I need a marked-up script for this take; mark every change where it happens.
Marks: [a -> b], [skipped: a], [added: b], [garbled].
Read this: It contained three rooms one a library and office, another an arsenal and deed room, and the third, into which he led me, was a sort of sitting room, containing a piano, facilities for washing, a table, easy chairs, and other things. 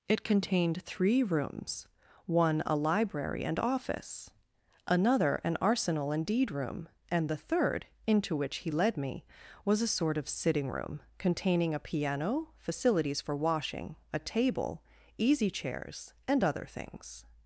It contained three rooms one a library and office, another an arsenal and deed room, and the third, into which he led me, was a sort of sitting room, containing a piano, facilities for washing, a table, easy chairs, and other things.